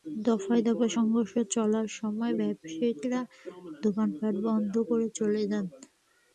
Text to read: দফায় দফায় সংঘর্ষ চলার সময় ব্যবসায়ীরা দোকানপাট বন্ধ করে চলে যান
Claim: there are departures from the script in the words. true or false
false